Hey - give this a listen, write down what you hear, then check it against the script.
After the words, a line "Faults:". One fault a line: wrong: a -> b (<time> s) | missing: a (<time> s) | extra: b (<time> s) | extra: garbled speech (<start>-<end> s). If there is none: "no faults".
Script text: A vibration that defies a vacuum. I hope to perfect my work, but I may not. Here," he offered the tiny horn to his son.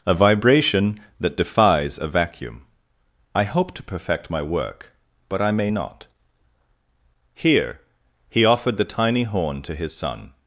A vibration that defies a vacuum. I hope to perfect my work, but I may not. Here," he offered the tiny horn to his son.
Faults:
no faults